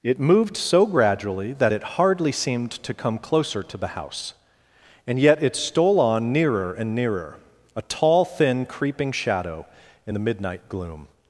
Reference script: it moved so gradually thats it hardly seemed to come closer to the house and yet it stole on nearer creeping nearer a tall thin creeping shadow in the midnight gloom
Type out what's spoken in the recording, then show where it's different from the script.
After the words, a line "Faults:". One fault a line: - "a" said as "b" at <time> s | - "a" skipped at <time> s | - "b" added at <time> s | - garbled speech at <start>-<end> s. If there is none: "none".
it moved so gradually that it hardly seemed to come closer to the house and yet it stole on nearer and nearer a tall thin creeping shadow in the midnight gloom
Faults:
- "thats" said as "that" at 1.5 s
- "creeping" said as "and" at 6.7 s